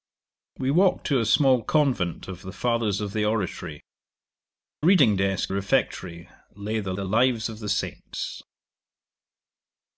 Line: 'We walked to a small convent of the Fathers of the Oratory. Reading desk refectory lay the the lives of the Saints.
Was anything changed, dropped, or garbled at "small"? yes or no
no